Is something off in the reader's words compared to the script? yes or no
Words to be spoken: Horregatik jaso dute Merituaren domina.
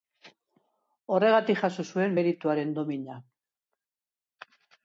yes